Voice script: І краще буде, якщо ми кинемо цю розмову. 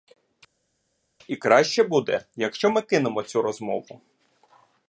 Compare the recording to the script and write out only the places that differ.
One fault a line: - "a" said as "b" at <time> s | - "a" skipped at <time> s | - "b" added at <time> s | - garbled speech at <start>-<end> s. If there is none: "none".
none